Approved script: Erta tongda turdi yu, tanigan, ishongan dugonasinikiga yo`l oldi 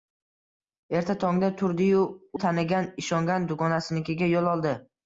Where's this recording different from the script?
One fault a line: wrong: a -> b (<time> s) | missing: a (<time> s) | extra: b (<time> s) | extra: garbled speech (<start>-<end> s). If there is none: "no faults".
no faults